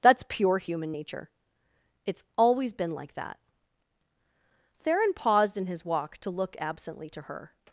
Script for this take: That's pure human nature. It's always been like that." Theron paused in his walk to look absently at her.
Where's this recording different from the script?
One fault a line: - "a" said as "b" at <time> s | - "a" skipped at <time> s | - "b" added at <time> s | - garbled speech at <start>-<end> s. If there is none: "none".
- "at" said as "to" at 7.1 s